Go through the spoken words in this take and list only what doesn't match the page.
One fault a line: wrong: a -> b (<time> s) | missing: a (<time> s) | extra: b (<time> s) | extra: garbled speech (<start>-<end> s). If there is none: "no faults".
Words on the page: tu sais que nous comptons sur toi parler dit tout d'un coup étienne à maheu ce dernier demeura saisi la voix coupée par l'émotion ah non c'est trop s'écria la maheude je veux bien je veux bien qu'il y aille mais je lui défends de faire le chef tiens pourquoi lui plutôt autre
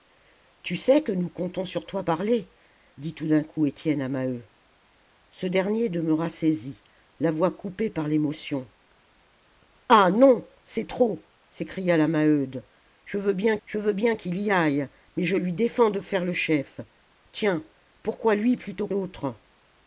no faults